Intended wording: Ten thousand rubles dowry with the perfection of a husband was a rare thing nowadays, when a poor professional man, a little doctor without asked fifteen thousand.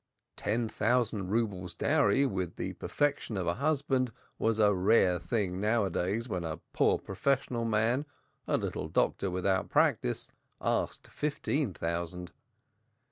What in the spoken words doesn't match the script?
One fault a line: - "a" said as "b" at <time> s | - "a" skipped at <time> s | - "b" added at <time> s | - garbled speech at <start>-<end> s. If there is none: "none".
- "practice" added at 9.7 s